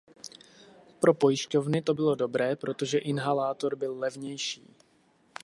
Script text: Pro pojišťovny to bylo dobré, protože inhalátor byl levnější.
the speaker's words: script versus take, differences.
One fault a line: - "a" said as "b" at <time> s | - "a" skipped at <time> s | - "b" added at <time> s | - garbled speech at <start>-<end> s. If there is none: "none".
none